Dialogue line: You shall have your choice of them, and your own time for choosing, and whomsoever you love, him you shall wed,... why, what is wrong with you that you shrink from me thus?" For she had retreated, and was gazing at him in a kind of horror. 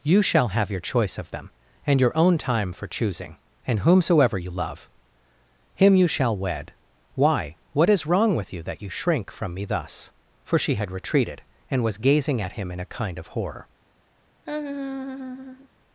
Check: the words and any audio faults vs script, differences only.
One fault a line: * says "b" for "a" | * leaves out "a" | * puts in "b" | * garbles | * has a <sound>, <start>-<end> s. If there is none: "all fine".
* has a laugh, 14.5-15.7 s